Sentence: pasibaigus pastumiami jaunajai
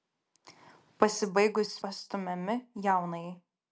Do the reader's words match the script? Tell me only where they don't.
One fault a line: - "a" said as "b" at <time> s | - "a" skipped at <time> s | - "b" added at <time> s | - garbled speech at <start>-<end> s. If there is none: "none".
none